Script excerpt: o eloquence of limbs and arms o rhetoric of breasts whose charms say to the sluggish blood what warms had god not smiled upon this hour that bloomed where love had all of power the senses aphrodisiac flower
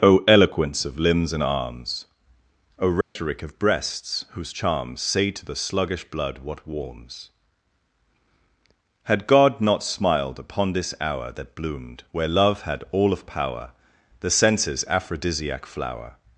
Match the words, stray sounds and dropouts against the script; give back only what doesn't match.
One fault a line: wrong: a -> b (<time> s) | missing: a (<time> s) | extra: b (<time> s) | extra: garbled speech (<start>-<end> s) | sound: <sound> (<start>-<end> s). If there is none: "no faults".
sound: dropout (3.0-3.2 s)